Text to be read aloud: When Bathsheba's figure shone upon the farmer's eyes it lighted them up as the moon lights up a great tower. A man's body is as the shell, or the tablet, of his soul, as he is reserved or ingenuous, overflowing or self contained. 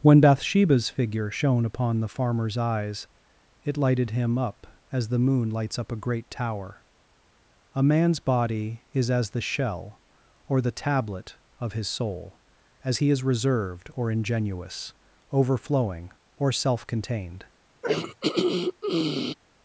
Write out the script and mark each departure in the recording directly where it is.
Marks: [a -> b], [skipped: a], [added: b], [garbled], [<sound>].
When Bathsheba's figure shone upon the farmer's eyes it lighted [them -> him] up as the moon lights up a great tower. A man's body is as the shell, or the tablet, of his soul, as he is reserved or ingenuous, overflowing or self contained. [throat clearing]